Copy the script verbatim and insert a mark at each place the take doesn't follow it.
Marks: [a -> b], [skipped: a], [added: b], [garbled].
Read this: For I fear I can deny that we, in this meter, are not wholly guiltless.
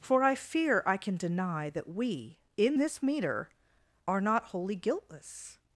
For I fear I can deny that we, in this meter, are not wholly guiltless.